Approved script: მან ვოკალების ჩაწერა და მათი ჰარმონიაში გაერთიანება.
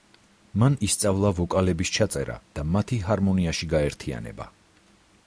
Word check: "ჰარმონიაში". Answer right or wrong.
right